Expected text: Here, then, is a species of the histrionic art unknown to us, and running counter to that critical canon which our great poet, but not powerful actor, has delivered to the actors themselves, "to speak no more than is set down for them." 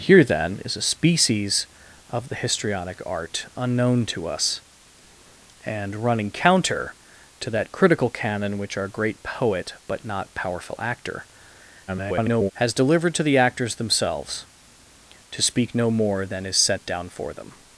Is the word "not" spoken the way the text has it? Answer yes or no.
yes